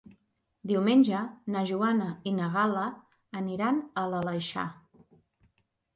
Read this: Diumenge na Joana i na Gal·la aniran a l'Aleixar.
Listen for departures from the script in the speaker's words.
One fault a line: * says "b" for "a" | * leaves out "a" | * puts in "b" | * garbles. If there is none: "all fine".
all fine